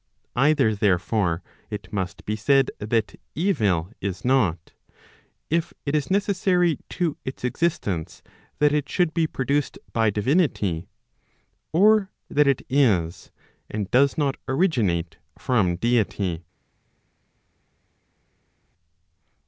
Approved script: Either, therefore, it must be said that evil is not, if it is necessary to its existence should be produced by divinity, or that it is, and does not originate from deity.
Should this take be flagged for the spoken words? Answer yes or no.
yes